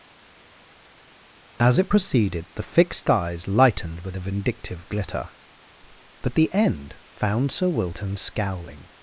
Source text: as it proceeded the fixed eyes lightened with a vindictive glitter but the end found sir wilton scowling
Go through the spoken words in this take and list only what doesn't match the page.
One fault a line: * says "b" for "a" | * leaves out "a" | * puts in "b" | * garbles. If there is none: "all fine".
all fine